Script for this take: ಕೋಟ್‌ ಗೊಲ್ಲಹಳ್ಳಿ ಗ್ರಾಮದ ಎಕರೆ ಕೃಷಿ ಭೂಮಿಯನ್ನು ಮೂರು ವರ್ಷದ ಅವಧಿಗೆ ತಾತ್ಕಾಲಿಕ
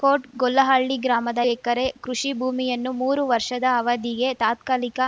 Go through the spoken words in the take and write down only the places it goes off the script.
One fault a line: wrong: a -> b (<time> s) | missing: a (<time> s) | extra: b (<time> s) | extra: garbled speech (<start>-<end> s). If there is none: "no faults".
no faults